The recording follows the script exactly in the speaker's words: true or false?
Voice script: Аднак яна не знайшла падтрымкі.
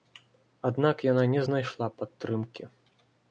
true